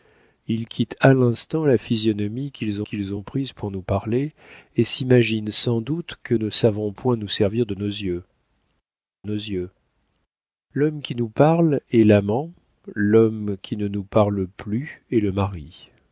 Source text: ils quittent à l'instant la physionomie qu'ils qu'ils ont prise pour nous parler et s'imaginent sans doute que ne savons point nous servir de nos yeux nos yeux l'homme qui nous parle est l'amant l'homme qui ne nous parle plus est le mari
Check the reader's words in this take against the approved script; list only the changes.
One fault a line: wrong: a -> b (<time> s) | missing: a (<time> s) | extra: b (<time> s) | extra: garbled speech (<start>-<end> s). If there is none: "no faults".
no faults